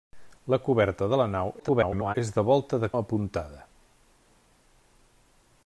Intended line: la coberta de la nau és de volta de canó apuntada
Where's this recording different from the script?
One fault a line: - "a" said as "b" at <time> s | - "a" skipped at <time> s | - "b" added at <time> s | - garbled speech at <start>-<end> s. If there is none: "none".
- garbled speech at 1.6-2.2 s
- "canó" skipped at 2.9 s